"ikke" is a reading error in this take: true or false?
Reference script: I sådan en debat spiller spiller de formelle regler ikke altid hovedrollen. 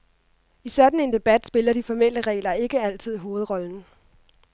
false